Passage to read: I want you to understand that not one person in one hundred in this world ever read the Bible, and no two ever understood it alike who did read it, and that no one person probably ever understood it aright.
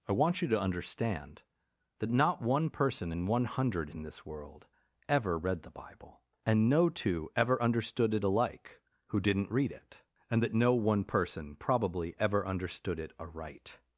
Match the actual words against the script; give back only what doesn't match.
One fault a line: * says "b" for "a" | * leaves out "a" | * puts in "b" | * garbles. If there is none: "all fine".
* says "didn't" for "did"